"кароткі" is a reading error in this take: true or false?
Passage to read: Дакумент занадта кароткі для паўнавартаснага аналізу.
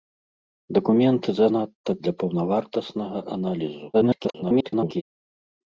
true